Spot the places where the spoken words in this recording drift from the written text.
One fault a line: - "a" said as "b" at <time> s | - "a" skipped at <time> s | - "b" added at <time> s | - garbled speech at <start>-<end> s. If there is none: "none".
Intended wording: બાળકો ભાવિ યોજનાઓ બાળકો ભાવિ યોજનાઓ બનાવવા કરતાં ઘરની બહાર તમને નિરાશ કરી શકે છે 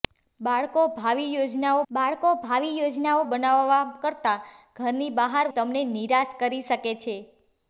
none